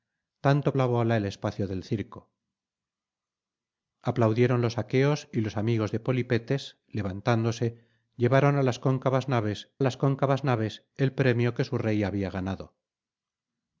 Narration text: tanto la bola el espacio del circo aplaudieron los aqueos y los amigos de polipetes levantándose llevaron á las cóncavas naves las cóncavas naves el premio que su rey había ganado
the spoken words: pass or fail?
pass